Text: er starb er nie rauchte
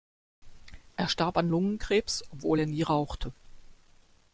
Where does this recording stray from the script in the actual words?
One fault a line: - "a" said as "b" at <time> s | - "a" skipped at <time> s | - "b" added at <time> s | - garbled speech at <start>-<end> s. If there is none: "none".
- "an lungenkrebs obwohl" added at 1.4 s